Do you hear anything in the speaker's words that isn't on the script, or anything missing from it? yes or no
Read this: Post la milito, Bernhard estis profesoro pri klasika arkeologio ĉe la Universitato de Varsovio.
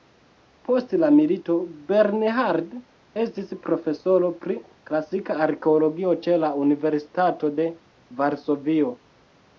no